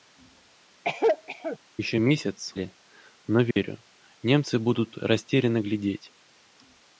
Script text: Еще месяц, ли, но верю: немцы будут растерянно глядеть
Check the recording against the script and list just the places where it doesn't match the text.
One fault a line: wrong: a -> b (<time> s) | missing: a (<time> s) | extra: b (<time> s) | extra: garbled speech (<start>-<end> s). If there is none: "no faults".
no faults